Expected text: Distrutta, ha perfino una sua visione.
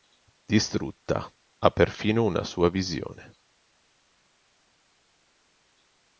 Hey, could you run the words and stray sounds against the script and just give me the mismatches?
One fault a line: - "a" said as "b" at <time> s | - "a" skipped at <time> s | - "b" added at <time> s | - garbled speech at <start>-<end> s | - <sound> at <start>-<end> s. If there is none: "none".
none